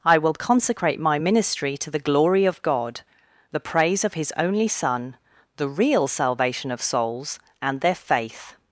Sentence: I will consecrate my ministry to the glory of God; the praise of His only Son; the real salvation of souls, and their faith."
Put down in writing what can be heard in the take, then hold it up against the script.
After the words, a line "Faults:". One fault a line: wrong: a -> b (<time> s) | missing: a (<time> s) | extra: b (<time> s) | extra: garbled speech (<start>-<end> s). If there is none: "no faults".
I will consecrate my ministry to the glory of God; the praise of His only Son; the real salvation of souls, and their faith."
Faults:
no faults